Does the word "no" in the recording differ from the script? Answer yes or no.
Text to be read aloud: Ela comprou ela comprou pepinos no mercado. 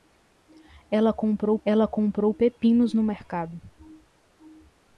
no